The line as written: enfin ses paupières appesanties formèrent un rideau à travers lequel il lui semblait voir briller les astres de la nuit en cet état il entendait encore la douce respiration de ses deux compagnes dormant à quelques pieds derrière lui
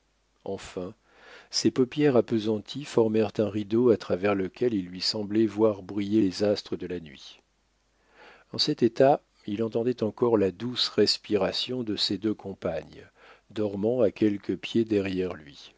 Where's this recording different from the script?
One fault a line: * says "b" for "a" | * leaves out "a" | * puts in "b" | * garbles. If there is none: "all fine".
all fine